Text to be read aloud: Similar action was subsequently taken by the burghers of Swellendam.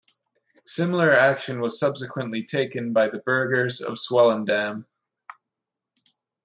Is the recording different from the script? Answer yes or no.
no